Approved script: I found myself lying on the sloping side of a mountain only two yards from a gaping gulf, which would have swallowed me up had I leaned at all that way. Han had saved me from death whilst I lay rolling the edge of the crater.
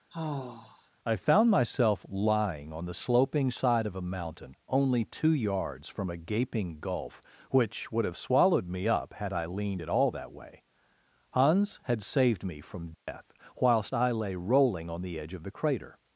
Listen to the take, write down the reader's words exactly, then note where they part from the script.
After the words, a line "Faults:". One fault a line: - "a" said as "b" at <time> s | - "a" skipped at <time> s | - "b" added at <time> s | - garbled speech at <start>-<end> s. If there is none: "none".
I found myself lying on the sloping side of a mountain only two yards from a gaping gulf, which would have swallowed me up had I leaned at all that way. Hans had saved me from death whilst I lay rolling on the edge of the crater.
Faults:
- "Han" said as "Hans" at 11.3 s
- "on" added at 14.9 s